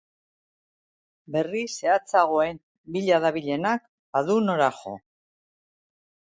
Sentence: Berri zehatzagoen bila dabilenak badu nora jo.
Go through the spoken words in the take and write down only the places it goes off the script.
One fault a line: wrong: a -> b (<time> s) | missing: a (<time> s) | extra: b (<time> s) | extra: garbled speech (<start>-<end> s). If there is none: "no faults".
no faults